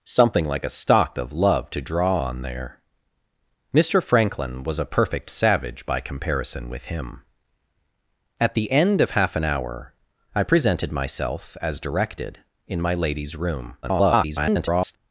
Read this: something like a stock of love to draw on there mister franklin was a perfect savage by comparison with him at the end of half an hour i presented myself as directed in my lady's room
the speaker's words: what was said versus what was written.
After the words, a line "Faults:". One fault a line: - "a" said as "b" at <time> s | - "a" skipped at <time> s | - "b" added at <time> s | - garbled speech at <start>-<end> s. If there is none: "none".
something like a stock of love to draw on there mister franklin was a perfect savage by comparison with him at the end of half an hour i presented myself as directed in my lady's room [garbled]
Faults:
- garbled speech at 13.8-15.0 s